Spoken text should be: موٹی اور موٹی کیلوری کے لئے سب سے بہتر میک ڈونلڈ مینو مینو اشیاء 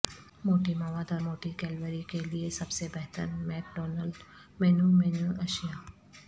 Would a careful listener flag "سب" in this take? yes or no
no